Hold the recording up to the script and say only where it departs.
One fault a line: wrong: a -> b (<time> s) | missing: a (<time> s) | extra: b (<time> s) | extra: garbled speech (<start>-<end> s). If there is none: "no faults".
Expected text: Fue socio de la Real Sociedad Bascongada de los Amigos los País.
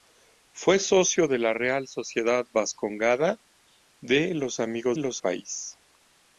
no faults